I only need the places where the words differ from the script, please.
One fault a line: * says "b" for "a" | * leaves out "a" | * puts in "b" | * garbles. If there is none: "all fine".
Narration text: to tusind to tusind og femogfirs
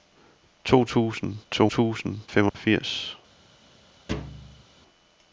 all fine